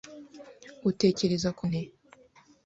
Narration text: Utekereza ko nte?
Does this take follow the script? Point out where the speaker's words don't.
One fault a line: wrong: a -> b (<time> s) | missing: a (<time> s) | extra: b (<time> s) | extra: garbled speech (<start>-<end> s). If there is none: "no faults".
no faults